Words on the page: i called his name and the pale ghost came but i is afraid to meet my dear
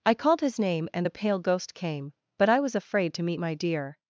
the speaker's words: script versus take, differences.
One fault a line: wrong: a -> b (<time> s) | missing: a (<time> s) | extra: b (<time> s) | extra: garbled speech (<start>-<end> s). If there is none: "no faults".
wrong: is -> was (2.6 s)